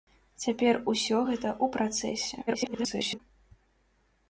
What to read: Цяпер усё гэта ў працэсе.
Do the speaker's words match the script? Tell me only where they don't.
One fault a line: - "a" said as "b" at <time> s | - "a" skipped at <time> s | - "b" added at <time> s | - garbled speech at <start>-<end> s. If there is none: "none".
- garbled speech at 2.5-3.2 s